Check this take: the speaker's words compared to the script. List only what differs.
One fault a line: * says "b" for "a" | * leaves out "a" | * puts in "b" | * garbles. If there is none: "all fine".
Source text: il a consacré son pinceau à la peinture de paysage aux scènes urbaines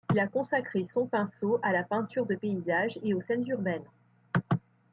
* puts in "et"